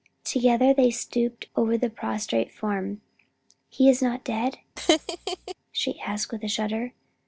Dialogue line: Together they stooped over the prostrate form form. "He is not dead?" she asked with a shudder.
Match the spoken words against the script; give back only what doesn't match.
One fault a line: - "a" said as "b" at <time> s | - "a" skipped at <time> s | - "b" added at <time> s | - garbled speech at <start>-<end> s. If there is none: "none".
- "form" skipped at 3.0 s